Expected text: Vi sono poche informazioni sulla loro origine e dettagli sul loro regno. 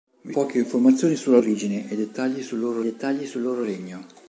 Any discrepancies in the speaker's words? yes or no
yes